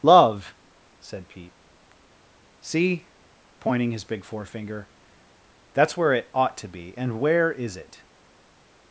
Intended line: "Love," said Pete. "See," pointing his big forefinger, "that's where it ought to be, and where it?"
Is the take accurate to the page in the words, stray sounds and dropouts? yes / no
no